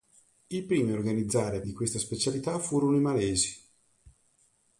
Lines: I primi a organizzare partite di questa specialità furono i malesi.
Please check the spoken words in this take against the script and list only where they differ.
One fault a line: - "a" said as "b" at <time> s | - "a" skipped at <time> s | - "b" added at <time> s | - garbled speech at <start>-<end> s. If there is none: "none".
- "partite" skipped at 1.6 s